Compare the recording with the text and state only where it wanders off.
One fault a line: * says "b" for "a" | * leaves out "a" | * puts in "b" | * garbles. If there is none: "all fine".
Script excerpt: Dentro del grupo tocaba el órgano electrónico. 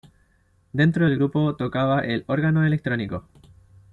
all fine